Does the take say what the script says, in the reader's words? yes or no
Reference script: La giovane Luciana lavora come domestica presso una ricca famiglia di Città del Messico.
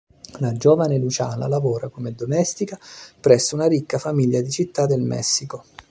yes